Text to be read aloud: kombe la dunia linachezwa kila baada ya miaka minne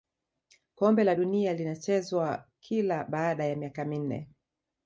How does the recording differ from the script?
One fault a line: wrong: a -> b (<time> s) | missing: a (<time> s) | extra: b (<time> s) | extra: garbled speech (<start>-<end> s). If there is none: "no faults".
no faults